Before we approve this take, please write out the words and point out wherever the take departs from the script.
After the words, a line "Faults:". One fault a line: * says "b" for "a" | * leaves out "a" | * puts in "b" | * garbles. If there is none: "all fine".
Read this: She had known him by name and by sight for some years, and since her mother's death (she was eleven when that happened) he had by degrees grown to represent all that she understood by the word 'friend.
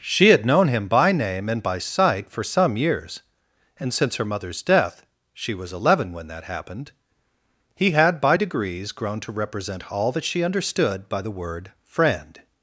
She had known him by name and by sight for some years, and since her mother's death (she was eleven when that happened) he had by degrees grown to represent all that she understood by the word 'friend.
Faults:
all fine